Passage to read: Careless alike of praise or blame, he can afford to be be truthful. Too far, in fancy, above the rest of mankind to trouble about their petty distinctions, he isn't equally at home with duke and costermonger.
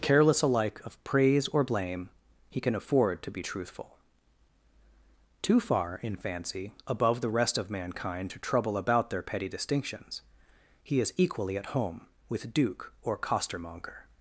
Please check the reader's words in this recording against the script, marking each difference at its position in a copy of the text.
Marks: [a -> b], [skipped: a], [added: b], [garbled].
Careless alike of praise or blame, he can afford to be [skipped: be] truthful. Too far, in fancy, above the rest of mankind to trouble about their petty distinctions, he [isn't -> is] equally at home with duke [and -> or] costermonger.